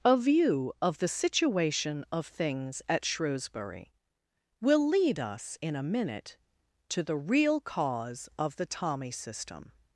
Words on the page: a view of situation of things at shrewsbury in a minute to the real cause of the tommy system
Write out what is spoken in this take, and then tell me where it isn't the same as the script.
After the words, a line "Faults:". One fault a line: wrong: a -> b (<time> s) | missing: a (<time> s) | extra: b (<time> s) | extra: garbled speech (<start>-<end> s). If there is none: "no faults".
a view of the situation of things at shrewsbury will lead us in a minute to the real cause of the tommy system
Faults:
extra: the (1.0 s)
extra: will lead us (4.6 s)